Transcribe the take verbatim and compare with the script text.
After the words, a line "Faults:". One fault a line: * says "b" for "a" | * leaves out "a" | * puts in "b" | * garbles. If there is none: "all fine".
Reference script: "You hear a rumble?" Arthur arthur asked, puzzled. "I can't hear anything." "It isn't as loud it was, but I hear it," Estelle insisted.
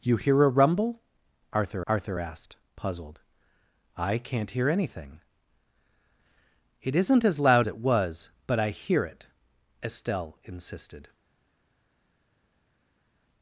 "You hear a rumble?" Arthur arthur asked, puzzled. "I can't hear anything." "It isn't as loud it was, but I hear it," Estelle insisted.
Faults:
all fine